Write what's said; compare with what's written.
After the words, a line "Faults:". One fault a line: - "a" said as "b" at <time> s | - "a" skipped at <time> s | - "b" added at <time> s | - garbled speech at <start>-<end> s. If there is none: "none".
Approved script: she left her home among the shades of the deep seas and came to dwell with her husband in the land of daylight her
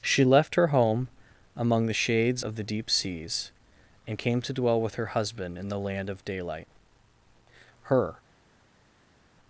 she left her home among the shades of the deep seas and came to dwell with her husband in the land of daylight her
Faults:
none